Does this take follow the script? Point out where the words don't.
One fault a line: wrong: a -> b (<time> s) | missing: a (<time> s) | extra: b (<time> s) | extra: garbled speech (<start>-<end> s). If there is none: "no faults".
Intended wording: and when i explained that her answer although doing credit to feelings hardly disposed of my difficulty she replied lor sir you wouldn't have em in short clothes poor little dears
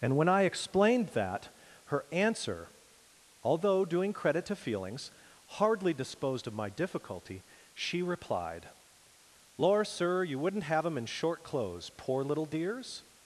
no faults